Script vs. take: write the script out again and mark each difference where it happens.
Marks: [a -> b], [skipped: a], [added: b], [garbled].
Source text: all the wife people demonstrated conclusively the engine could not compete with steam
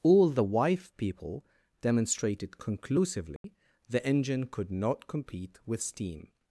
all the wife people demonstrated conclusively the engine could not compete with steam